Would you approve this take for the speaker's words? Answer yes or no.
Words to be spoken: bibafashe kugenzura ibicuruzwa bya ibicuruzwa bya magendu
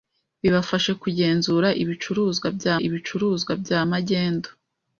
yes